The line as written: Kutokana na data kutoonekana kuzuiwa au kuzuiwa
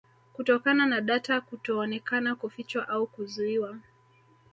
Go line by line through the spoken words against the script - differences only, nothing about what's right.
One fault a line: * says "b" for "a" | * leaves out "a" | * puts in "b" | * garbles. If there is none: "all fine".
* says "kufichwa" for "kuzuiwa"